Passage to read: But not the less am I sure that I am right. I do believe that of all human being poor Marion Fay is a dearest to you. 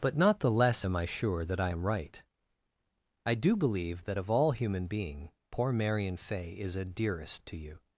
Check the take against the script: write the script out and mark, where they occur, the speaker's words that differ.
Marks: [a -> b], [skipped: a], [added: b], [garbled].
But not the less am I sure that I am right. I do believe that of all human being poor Marion Fay is a dearest to you.